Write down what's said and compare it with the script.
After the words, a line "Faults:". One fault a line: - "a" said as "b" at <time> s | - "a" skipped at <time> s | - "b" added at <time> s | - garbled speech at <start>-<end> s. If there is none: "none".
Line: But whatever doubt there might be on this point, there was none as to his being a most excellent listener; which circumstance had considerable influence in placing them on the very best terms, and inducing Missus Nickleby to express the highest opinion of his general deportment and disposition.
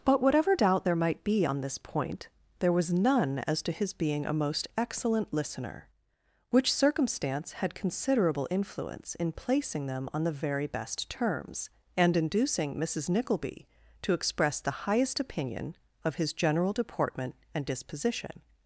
But whatever doubt there might be on this point, there was none as to his being a most excellent listener; which circumstance had considerable influence in placing them on the very best terms, and inducing Missus Nickleby to express the highest opinion of his general deportment and disposition.
Faults:
none